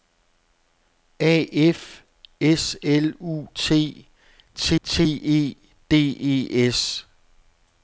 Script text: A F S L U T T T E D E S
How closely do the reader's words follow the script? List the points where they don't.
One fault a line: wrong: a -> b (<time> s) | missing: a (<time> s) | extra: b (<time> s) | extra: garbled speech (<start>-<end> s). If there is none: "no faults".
no faults